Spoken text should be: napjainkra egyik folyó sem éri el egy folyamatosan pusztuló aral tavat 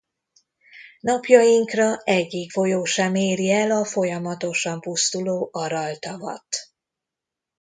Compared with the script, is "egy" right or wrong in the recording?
wrong